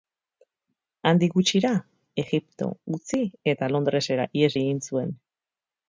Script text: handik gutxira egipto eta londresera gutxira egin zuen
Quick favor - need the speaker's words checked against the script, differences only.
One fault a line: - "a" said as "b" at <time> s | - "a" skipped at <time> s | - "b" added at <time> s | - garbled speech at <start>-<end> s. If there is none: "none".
- "utzi" added at 3.0 s
- "gutxira" said as "ihes" at 4.4 s